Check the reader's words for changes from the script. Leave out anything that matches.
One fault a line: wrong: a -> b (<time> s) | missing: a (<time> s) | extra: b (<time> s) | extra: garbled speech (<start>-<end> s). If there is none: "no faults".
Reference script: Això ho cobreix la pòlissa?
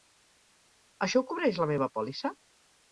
extra: meva (1.8 s)